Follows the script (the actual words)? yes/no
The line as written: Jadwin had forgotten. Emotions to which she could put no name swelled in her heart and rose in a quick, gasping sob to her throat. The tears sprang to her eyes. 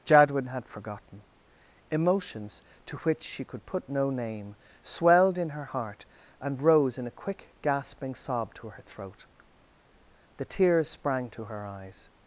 yes